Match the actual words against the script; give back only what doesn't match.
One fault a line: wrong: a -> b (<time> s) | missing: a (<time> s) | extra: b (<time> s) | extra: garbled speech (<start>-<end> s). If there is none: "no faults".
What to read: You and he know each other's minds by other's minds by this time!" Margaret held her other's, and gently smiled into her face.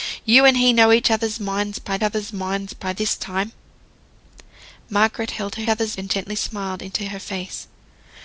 no faults